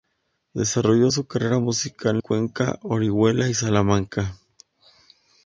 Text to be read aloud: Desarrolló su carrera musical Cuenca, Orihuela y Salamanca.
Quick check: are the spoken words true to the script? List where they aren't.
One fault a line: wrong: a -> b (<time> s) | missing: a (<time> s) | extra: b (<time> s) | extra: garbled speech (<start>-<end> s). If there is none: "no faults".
no faults